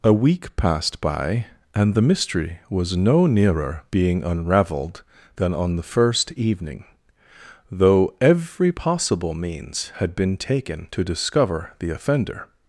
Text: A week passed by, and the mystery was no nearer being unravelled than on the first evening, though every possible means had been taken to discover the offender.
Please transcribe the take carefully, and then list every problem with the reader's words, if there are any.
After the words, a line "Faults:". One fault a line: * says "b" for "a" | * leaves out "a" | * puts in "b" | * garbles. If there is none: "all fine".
A week passed by, and the mystery was no nearer being unravelled than on the first evening, though every possible means had been taken to discover the offender.
Faults:
all fine